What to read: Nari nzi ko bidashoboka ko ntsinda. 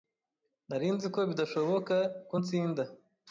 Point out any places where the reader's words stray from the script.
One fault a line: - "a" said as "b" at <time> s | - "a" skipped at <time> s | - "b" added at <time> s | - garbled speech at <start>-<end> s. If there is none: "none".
none